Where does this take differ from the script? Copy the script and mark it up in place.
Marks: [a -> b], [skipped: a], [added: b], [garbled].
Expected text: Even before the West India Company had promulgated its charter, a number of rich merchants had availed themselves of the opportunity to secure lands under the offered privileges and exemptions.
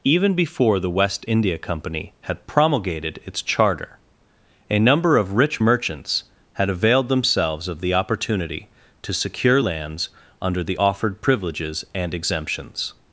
Even before the West India Company had promulgated its charter, a number of rich merchants had availed themselves of the opportunity to secure lands under the offered privileges and exemptions.